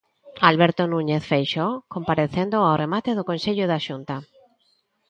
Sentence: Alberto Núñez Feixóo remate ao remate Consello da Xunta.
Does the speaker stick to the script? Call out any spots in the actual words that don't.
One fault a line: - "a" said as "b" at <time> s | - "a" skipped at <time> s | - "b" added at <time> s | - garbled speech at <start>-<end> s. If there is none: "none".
- "remate" said as "comparecendo" at 1.9 s
- "do" added at 3.2 s